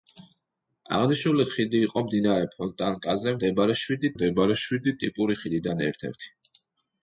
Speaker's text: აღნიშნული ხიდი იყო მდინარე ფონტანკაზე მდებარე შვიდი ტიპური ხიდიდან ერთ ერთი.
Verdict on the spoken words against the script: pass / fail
fail